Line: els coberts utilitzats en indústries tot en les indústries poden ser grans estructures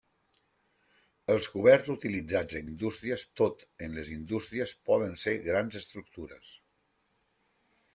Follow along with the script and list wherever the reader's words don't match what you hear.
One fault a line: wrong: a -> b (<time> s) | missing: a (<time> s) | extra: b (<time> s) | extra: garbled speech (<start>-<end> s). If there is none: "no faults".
no faults